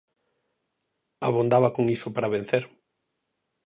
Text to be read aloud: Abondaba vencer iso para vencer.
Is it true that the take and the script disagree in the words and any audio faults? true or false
true